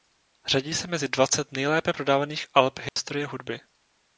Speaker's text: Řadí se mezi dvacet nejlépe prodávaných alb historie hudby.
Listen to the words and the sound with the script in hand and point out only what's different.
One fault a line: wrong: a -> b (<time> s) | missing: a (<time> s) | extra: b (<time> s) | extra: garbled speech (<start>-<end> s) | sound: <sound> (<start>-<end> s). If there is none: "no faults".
sound: dropout (2.9-3.0 s)